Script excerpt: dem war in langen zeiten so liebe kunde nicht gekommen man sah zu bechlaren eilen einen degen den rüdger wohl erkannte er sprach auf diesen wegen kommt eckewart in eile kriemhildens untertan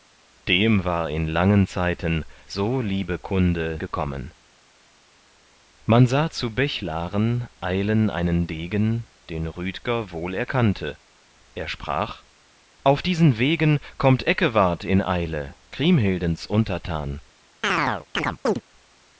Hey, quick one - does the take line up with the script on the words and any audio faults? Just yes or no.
no